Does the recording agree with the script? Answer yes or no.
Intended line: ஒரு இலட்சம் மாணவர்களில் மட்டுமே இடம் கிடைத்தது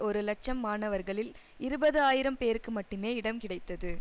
no